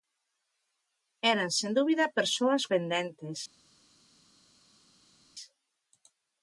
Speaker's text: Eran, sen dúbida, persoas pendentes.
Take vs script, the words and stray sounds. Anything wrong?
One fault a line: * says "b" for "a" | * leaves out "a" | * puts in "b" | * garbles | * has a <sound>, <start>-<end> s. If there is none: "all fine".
all fine